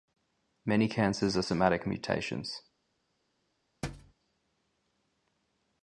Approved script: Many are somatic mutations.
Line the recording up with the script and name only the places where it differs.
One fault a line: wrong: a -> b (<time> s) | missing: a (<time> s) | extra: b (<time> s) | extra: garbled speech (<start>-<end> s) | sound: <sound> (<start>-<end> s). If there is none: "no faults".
extra: cancers (0.9 s)
sound: thud (3.8-4.1 s)